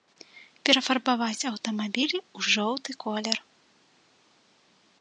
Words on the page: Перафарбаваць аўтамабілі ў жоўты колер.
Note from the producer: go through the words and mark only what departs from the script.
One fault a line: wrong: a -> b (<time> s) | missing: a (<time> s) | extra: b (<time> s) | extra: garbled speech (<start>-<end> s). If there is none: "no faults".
no faults